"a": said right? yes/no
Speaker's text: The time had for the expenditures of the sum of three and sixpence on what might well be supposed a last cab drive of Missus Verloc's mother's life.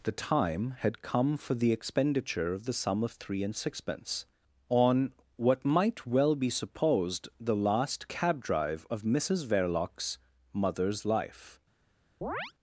no